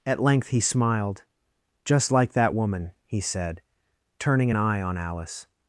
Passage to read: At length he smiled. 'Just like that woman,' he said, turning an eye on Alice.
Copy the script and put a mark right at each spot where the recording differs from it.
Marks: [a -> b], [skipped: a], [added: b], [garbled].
At length he smiled. 'Just like that woman,' he said, turning an eye on Alice.